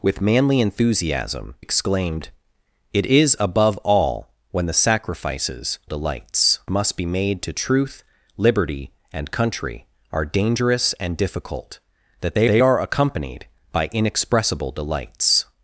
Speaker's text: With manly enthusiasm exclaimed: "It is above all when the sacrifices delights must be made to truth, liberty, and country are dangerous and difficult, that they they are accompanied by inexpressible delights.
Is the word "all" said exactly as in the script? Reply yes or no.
yes